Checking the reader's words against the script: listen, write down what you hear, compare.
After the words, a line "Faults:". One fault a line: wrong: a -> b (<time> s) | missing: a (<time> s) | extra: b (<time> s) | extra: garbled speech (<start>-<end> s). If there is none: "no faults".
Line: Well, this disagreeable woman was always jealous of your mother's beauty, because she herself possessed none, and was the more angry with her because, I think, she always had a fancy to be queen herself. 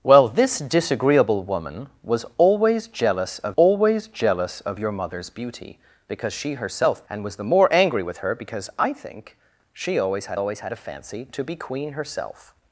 Well, this disagreeable woman was always jealous of always jealous of your mother's beauty, because she herself and was the more angry with her because, I think, she always had always had a fancy to be queen herself.
Faults:
extra: always jealous of (3.6 s)
missing: possessed none (7.1 s)
extra: always had (10.3 s)